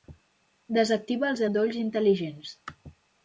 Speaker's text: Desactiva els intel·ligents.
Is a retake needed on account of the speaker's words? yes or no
yes